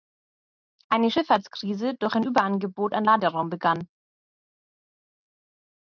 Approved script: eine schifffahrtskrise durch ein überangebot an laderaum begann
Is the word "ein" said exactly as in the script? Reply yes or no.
yes